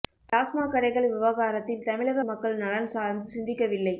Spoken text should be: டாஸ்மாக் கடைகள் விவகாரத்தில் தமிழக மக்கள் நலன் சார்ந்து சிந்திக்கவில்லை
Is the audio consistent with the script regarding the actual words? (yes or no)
yes